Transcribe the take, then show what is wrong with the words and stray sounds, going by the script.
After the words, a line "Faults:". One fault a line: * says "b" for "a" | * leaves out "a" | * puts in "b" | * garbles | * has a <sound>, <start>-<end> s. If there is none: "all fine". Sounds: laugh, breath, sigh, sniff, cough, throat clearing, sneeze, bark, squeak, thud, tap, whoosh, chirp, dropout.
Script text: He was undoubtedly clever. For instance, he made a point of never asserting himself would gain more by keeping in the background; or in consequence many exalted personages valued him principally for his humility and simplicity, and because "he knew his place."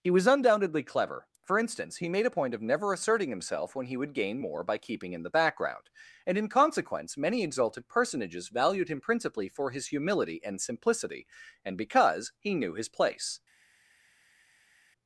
He was undoubtedly clever. For instance, he made a point of never asserting himself when he would gain more by keeping in the background; and in consequence many exalted personages valued him principally for his humility and simplicity, and because "he knew his place."
Faults:
* puts in "when he"
* says "and" for "or"